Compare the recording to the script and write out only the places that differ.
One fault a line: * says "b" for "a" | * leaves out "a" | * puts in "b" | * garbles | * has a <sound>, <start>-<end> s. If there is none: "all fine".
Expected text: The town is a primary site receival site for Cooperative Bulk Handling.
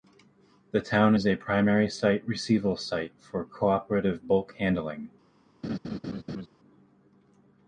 * has a laugh, 5.6-6.5 s